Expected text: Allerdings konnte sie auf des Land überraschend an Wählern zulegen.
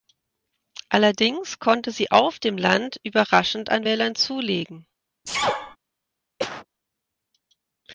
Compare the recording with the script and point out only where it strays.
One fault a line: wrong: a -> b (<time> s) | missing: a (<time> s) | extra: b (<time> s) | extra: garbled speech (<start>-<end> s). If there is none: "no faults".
wrong: des -> dem (2.4 s)